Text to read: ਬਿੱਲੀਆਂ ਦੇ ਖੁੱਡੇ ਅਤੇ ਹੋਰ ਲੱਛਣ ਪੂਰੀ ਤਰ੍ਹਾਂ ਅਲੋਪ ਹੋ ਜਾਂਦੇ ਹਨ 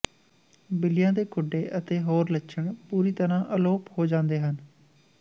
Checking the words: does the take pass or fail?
pass